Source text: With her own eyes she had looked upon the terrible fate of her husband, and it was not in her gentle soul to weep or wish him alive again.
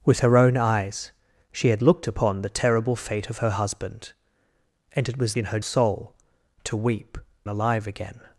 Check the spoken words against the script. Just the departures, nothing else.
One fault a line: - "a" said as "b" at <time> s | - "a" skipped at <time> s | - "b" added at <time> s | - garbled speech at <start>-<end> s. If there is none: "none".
- "not" skipped at 5.4 s
- "gentle" skipped at 5.6 s
- "or wish him" skipped at 7.2 s